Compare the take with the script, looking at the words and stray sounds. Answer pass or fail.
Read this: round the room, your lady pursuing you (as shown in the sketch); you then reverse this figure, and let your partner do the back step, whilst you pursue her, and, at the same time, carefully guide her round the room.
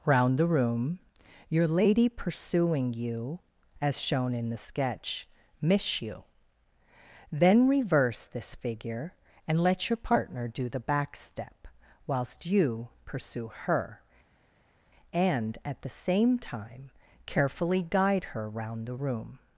fail